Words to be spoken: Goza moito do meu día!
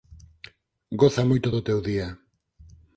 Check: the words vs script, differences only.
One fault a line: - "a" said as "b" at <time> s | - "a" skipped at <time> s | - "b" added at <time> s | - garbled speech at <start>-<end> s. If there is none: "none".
- "meu" said as "teu" at 1.7 s